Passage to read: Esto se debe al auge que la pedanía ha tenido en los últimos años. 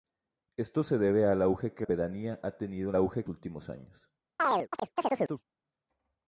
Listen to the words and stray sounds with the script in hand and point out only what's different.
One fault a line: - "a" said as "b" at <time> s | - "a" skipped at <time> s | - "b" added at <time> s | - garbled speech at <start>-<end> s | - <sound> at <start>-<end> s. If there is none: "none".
- "la" skipped at 1.9 s
- "los" said as "auge" at 3.0 s
- chirp at 4.4-5.4 s